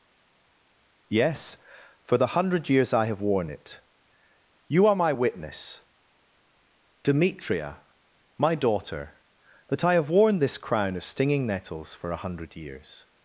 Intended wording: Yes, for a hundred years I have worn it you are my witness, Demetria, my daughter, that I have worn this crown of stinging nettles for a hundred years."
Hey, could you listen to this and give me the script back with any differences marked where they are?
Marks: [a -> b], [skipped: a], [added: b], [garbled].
Yes, for [a -> the] hundred years I have worn it you are my witness, Demetria, my daughter, that I have worn this crown of stinging nettles for a hundred years."